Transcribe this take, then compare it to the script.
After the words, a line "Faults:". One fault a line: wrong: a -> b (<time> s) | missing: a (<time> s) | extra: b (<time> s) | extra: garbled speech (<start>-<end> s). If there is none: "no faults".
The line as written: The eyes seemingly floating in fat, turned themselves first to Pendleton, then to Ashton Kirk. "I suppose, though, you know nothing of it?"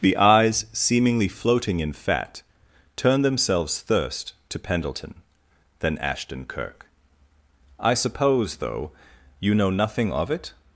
The eyes seemingly floating in fat, turned themselves thirst to Pendleton, then Ashton Kirk. "I suppose, though, you know nothing of it?"
Faults:
wrong: first -> thirst (3.8 s)
missing: to (6.0 s)